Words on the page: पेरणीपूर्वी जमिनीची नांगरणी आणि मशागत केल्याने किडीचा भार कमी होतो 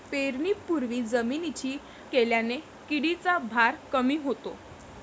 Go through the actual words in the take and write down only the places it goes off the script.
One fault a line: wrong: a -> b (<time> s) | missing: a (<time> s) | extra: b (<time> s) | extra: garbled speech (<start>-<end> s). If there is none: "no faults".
missing: नांगरणी आणि मशागत (1.8 s)